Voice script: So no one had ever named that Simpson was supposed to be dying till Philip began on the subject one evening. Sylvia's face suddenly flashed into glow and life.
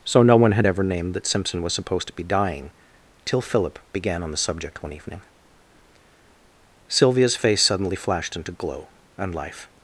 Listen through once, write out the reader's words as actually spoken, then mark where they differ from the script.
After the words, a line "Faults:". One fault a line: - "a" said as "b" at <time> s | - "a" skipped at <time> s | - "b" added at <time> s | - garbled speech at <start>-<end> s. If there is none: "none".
So no one had ever named that Simpson was supposed to be dying till Philip began on the subject one evening. Sylvia's face suddenly flashed into glow and life.
Faults:
none